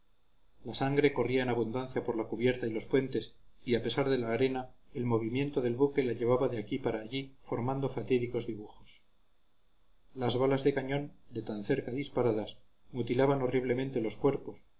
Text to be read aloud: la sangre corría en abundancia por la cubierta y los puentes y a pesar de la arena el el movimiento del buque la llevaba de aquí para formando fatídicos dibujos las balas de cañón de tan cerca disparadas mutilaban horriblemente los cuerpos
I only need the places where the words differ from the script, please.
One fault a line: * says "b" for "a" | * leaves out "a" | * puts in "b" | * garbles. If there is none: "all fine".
* leaves out "el"
* puts in "allí"